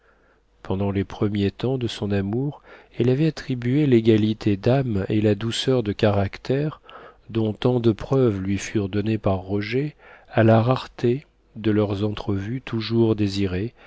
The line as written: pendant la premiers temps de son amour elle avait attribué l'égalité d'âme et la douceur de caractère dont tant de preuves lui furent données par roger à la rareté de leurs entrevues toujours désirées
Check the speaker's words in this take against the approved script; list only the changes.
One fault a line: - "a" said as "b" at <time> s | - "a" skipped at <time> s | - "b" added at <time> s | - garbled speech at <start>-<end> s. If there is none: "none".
- "la" said as "les" at 0.9 s